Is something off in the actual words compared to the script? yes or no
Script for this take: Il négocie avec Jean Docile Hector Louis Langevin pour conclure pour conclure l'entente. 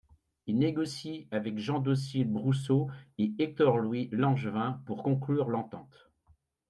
yes